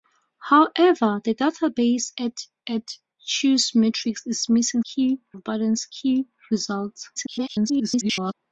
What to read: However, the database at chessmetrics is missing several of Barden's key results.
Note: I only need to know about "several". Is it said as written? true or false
false